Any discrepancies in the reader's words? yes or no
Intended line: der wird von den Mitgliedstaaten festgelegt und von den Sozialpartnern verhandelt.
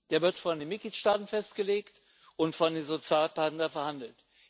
no